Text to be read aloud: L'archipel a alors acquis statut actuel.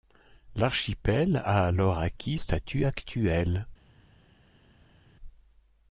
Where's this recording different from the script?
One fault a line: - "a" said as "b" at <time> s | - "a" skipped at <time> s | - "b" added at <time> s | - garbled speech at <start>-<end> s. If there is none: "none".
none